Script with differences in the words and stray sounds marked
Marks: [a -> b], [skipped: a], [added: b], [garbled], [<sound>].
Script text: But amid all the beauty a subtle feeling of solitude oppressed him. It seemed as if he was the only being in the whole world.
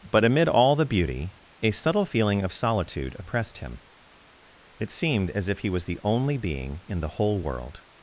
But amid all the beauty a subtle feeling of solitude oppressed him. It seemed as if he was the only being in the whole world.